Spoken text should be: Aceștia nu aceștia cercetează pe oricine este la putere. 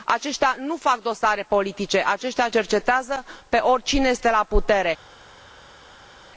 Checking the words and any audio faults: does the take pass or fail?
fail